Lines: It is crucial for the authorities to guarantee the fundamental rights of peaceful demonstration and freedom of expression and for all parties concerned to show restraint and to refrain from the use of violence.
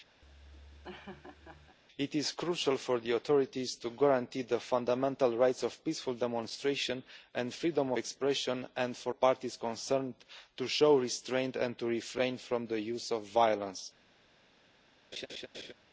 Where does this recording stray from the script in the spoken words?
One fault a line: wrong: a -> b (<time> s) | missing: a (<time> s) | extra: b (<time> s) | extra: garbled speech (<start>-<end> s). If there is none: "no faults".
missing: of (7.9 s)
missing: all (9.1 s)